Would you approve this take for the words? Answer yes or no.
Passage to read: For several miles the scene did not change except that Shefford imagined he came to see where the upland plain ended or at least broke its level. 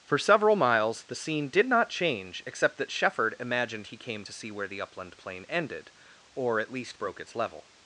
yes